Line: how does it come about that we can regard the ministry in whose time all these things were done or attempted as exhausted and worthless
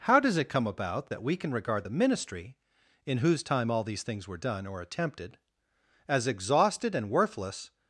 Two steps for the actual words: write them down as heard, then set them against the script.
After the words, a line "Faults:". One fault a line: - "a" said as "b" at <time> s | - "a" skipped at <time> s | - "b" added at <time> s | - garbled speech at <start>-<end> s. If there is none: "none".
how does it come about that we can regard the ministry in whose time all these things were done or attempted as exhausted and worthless
Faults:
none